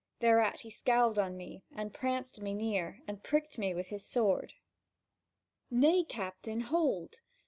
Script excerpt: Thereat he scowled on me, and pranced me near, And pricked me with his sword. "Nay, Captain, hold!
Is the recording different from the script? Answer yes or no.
no